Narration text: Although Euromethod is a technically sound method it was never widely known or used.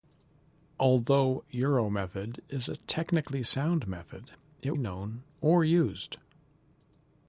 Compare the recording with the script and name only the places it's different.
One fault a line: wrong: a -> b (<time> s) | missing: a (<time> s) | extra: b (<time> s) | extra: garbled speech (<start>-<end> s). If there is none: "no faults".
missing: was never widely (4.8 s)